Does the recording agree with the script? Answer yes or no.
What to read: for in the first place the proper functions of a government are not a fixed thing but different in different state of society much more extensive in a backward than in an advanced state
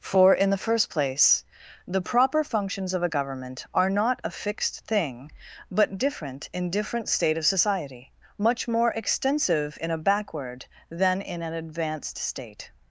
yes